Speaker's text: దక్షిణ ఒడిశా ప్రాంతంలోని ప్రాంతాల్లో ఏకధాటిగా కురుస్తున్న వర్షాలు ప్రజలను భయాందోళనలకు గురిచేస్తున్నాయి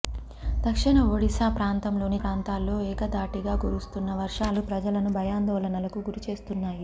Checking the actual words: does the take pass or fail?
pass